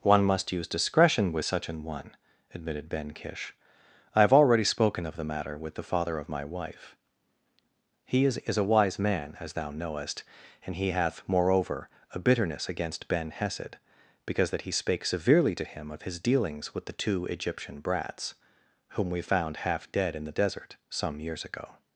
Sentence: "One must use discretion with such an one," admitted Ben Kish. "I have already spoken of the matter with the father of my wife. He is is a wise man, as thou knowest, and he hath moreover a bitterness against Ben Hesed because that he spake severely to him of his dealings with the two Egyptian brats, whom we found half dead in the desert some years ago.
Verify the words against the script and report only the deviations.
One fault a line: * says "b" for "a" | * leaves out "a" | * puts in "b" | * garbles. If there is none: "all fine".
all fine